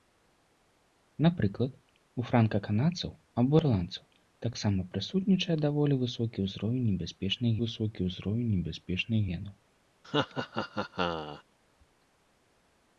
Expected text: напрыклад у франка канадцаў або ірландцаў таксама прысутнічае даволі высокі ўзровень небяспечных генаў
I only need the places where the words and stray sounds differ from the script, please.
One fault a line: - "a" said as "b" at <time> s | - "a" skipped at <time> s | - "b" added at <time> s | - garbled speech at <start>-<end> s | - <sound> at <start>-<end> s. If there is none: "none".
- "высокі ўзровень небяспечных" added at 7.7 s
- laugh at 10.0-11.4 s